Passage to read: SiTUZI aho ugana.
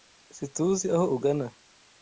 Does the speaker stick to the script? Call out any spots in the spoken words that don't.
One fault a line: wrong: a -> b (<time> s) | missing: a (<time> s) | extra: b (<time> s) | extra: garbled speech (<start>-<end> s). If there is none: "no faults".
no faults